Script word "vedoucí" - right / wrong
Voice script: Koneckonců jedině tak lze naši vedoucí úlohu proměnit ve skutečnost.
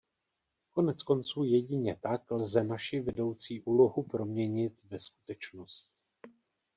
right